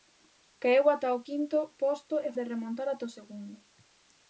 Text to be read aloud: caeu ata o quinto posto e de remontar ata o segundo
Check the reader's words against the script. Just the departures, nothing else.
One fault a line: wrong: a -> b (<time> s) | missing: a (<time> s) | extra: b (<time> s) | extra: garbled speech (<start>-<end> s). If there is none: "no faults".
no faults